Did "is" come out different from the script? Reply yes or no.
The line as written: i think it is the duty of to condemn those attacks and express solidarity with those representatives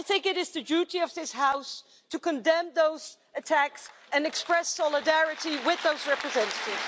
no